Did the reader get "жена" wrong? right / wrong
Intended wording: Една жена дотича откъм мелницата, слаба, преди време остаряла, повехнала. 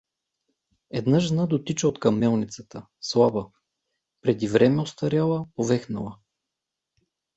right